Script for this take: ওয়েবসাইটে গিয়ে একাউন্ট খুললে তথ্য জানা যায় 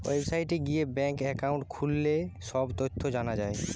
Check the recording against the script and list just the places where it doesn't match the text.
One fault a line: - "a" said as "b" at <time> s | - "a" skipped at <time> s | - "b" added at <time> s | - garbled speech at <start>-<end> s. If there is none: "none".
- "ব্যাঙ্ক" added at 0.9 s
- "সব" added at 2.4 s